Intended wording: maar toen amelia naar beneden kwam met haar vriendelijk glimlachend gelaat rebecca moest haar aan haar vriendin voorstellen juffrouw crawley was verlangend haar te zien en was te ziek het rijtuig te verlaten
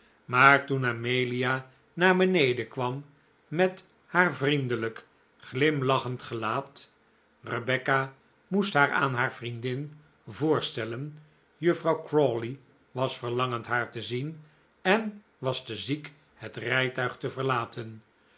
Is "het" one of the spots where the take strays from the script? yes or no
no